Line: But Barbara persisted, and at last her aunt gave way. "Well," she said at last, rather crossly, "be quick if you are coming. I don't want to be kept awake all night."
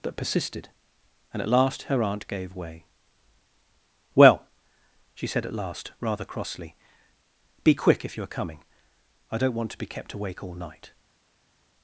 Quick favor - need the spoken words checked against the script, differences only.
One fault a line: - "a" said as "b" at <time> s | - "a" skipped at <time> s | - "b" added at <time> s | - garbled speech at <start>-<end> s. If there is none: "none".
- "Barbara" skipped at 0.2 s